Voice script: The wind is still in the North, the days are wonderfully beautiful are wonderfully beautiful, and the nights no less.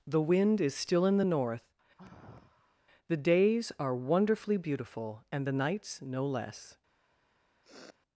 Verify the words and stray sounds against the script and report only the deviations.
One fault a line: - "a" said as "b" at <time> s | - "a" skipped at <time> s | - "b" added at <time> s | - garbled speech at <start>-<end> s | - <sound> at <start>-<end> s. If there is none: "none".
- sigh at 2.0-2.8 s
- "are wonderfully beautiful" skipped at 5.2 s
- sniff at 7.6-8.0 s